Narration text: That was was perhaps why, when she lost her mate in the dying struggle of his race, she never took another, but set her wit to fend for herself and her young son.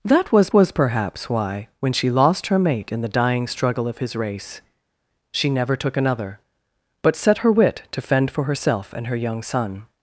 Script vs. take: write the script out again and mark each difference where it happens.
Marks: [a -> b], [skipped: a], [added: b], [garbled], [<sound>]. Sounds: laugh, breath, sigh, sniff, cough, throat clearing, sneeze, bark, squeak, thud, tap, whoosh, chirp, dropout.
That was was perhaps why, when she lost her mate in the dying struggle of his race, she never took another, but set her wit to fend for herself and her young son.